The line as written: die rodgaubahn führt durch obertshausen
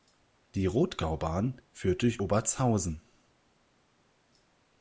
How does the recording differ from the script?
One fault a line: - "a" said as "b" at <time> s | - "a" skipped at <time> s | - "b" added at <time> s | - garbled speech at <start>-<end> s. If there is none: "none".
none